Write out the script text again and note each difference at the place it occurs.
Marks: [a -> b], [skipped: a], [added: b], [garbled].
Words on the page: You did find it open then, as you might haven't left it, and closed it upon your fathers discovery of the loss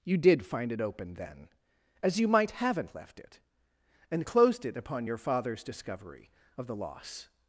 You did find it open then, as you might haven't left it, and closed it upon your fathers discovery of the loss